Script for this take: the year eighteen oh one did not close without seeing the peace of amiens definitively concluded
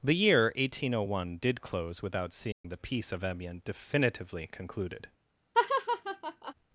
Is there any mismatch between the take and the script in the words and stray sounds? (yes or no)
yes